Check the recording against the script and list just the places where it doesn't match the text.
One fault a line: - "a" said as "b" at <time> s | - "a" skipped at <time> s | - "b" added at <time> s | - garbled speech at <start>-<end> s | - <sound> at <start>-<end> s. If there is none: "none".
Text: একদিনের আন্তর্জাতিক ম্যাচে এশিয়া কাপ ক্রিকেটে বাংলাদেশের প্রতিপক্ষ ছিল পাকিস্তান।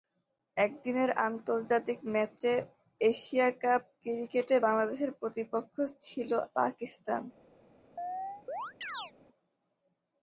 - chirp at 8.0-9.1 s